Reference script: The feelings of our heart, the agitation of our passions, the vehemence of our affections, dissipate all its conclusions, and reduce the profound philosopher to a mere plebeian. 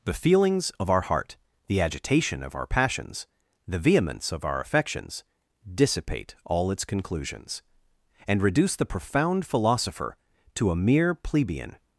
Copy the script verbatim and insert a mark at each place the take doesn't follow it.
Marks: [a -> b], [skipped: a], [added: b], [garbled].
The feelings of our heart, the agitation of our passions, the vehemence of our affections, dissipate all its conclusions, and reduce the profound philosopher to a mere plebeian.